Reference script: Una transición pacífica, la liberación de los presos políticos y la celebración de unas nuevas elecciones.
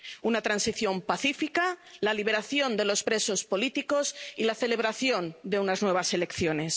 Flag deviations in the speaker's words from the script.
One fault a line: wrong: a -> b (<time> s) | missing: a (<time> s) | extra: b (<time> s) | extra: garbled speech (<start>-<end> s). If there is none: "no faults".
no faults